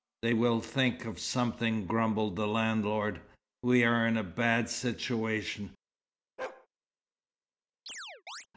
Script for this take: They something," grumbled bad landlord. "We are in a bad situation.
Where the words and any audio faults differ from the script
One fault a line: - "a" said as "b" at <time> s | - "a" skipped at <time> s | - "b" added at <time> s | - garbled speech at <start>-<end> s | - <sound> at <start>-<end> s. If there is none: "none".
- "will think of" added at 0.3 s
- "bad" said as "the" at 2.4 s
- bark at 6.4-6.7 s
- chirp at 7.9-8.5 s